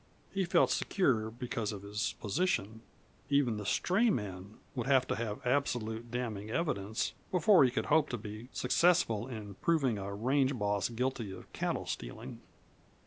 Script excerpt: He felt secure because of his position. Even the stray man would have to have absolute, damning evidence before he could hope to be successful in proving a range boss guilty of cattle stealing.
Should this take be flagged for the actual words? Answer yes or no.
no